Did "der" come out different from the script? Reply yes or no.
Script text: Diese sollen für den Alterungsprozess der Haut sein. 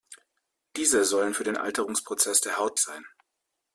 no